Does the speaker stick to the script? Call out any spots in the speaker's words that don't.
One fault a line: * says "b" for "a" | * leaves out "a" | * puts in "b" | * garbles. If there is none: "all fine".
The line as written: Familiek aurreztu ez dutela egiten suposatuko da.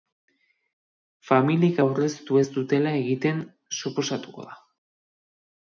all fine